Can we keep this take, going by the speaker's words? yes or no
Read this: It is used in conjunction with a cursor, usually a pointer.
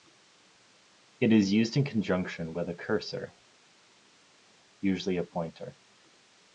yes